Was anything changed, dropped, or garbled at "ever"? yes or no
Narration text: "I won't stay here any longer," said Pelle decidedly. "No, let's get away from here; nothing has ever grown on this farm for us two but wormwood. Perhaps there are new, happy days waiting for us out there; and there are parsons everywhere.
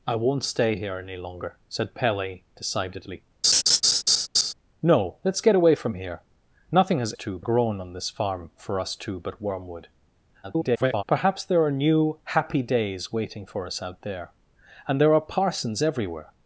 yes